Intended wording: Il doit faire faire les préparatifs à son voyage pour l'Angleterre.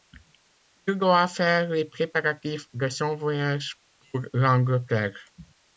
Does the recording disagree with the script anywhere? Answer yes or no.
yes